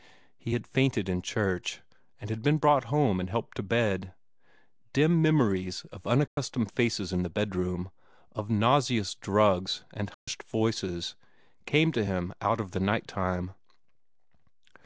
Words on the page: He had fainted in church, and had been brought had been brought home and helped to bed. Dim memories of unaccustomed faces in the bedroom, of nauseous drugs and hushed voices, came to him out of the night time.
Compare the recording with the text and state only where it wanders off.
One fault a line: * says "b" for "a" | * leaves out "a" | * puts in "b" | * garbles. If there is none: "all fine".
* leaves out "had been brought"